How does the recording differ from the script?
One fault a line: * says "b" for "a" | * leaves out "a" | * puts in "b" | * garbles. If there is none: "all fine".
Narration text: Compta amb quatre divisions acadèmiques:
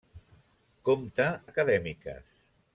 * leaves out "amb quatre divisions"